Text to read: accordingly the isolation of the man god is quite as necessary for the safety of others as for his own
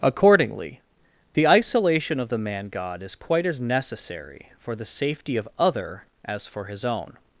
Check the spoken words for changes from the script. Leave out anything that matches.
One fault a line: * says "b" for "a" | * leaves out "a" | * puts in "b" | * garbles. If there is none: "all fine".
* says "other" for "others"